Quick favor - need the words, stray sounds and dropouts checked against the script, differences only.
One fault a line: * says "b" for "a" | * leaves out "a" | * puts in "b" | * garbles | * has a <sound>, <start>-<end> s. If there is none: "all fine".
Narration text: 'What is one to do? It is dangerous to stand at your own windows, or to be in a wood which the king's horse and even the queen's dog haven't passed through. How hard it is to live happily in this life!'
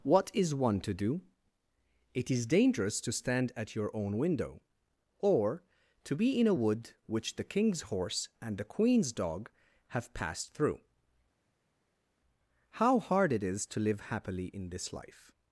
* says "window" for "windows"
* leaves out "even"
* says "have" for "haven't"